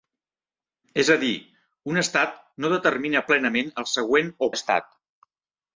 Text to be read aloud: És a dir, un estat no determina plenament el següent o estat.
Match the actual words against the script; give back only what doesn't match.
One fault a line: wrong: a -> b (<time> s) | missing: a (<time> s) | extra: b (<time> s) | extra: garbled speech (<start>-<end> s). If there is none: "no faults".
no faults